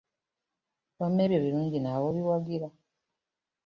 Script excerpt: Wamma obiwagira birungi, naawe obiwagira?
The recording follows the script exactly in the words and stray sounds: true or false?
false